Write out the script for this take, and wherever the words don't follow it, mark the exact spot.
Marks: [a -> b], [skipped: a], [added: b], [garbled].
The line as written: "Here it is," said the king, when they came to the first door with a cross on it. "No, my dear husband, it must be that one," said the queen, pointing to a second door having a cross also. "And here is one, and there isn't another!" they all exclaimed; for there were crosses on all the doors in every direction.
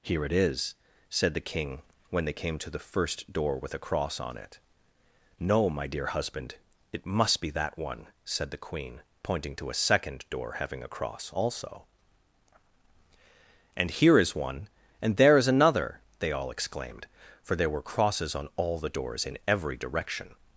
"Here it is," said the king, when they came to the first door with a cross on it. "No, my dear husband, it must be that one," said the queen, pointing to a second door having a cross also. "And here is one, and there [isn't -> is] another!" they all exclaimed; for there were crosses on all the doors in every direction.